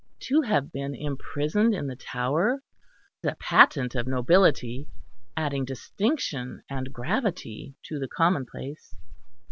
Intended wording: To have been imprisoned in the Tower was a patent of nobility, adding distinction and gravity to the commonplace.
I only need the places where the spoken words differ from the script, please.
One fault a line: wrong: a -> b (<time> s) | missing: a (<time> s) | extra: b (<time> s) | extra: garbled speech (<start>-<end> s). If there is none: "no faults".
missing: was (2.6 s)